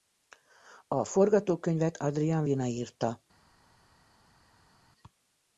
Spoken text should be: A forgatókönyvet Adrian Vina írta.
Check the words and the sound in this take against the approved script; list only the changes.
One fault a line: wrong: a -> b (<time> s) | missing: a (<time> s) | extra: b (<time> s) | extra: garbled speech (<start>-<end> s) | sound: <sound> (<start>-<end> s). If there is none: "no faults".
no faults